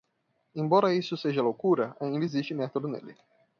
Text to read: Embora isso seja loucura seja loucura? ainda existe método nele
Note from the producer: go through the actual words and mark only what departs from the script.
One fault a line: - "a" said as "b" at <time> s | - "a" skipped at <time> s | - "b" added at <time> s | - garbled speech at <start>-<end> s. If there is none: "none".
- "seja loucura" skipped at 1.9 s